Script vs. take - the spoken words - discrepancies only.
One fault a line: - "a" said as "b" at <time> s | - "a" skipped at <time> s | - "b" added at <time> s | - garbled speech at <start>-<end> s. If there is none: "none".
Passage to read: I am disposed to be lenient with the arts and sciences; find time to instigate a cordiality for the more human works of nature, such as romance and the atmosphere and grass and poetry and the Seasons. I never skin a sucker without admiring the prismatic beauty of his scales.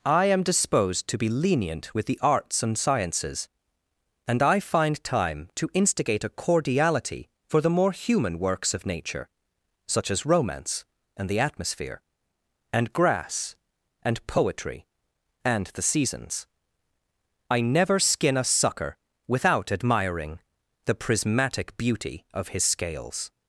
- "and I" added at 4.3 s